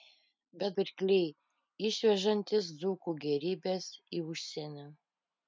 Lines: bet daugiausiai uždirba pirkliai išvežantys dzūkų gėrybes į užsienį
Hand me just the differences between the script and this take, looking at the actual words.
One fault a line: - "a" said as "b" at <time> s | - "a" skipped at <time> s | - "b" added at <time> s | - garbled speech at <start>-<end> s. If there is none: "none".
- "daugiausiai uždirba" skipped at 0.8 s